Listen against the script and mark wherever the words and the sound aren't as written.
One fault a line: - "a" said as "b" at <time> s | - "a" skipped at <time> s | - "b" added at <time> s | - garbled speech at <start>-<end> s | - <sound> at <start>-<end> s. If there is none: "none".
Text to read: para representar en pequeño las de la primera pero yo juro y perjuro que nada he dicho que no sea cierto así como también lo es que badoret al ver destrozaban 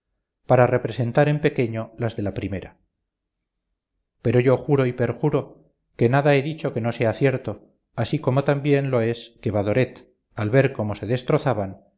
- "cómo se" added at 10.7 s